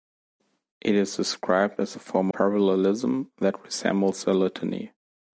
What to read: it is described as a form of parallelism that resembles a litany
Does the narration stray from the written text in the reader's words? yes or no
yes